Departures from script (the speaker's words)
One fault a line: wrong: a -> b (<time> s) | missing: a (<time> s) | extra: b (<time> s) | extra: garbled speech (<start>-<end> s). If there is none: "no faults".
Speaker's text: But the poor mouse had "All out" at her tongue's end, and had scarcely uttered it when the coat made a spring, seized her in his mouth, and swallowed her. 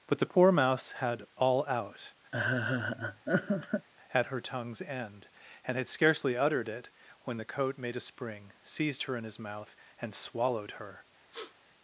no faults